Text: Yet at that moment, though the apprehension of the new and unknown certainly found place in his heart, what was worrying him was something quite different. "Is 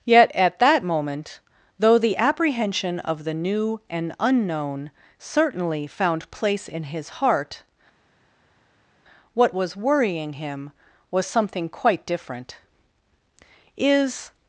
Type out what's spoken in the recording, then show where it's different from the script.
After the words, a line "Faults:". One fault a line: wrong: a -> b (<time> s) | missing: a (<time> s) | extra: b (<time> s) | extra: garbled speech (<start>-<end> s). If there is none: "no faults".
Yet at that moment, though the apprehension of the new and unknown certainly found place in his heart, what was worrying him was something quite different. "Is
Faults:
no faults